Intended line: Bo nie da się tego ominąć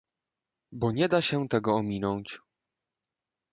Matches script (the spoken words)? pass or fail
pass